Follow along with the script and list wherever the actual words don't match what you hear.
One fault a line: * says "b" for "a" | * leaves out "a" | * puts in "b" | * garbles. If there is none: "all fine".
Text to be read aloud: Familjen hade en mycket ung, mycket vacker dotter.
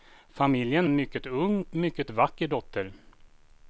* leaves out "hade"